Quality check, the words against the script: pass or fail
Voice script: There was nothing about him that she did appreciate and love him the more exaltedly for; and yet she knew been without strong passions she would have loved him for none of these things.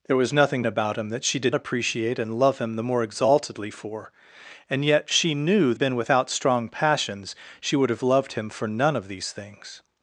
pass